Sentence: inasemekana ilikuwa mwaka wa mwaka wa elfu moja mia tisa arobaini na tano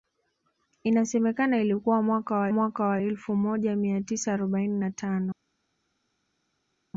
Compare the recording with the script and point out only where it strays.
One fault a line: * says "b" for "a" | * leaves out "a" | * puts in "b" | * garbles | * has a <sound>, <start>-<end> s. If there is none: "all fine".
all fine